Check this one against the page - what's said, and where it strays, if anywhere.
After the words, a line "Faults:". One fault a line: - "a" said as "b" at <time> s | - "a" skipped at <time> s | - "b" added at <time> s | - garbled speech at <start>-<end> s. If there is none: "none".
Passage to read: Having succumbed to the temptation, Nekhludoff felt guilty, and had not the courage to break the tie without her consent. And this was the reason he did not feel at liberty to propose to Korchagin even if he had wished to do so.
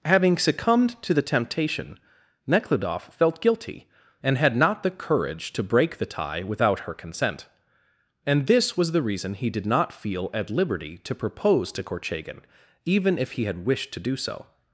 Having succumbed to the temptation, Nekhludoff felt guilty, and had not the courage to break the tie without her consent. And this was the reason he did not feel at liberty to propose to Korchagin even if he had wished to do so.
Faults:
none